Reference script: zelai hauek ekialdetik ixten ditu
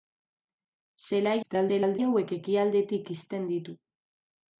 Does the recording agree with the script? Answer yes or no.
no